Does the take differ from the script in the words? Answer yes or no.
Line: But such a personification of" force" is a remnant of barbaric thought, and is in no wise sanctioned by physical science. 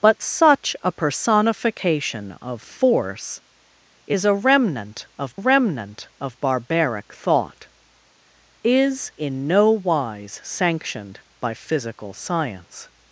yes